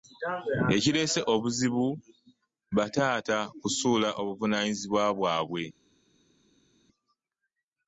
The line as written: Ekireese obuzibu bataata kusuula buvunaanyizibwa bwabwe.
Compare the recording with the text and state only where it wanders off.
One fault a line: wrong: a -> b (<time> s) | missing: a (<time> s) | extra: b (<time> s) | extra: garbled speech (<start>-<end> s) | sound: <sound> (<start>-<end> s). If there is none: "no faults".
no faults